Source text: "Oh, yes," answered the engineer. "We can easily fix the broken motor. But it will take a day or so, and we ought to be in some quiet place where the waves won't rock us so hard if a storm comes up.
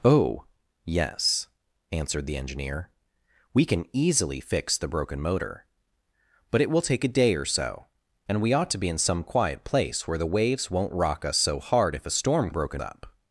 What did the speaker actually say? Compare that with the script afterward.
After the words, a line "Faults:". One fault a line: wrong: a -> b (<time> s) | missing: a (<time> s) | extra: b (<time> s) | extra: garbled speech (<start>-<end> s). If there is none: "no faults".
"Oh, yes," answered the engineer. "We can easily fix the broken motor. But it will take a day or so, and we ought to be in some quiet place where the waves won't rock us so hard if a storm broken up.
Faults:
wrong: comes -> broken (12.5 s)